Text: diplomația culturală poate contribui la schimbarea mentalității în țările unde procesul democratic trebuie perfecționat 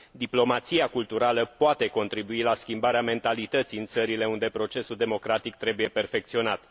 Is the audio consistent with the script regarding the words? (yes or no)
yes